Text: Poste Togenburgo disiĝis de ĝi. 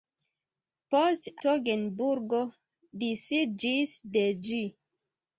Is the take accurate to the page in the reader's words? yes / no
yes